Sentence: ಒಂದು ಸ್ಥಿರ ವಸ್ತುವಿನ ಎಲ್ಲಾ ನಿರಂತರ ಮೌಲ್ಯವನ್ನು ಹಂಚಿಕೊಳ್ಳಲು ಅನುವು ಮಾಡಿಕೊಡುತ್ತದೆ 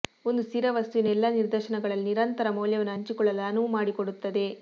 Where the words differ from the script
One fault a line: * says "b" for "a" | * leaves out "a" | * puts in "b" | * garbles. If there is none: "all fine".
* puts in "ನಿದರ್ಶನಗಳಲ್ಲಿ"